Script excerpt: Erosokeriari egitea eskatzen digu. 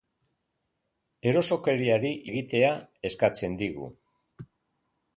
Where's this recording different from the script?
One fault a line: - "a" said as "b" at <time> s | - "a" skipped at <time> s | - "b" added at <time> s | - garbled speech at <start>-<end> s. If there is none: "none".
none